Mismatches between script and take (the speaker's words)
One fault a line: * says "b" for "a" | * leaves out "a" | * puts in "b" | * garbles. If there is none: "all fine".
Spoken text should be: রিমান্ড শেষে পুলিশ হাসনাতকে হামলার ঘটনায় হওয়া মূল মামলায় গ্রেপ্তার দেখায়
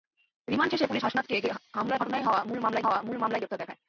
* puts in "হওয়া মূল মামলায়"